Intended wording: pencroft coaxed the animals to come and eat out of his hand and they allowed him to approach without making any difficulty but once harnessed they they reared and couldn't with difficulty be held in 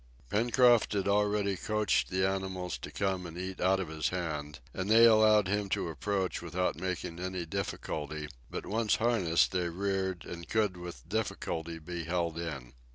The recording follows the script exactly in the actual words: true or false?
false